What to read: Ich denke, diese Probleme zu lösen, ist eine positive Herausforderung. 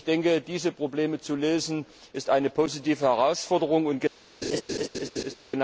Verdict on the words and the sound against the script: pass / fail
fail